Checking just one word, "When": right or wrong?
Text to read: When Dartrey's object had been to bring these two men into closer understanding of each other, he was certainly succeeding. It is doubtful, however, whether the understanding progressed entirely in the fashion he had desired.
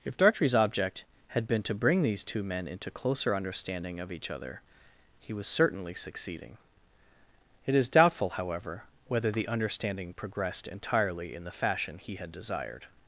wrong